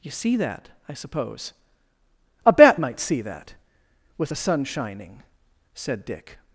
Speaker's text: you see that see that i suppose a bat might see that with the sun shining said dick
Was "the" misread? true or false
false